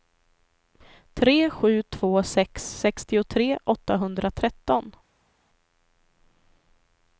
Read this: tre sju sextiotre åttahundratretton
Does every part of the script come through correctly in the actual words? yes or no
no